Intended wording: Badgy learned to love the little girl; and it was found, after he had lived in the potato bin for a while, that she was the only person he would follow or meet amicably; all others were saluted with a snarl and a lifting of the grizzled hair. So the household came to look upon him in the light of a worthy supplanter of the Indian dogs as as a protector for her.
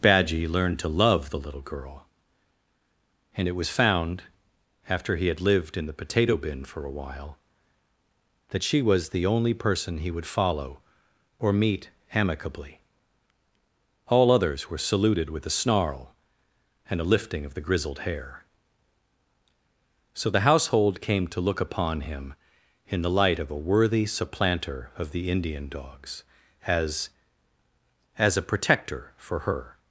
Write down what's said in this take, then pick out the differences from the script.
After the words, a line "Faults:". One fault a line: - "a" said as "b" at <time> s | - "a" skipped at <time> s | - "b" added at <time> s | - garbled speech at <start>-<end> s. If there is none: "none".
Badgy learned to love the little girl; and it was found, after he had lived in the potato bin for a while, that she was the only person he would follow or meet amicably; all others were saluted with a snarl and a lifting of the grizzled hair. So the household came to look upon him in the light of a worthy supplanter of the Indian dogs as as a protector for her.
Faults:
none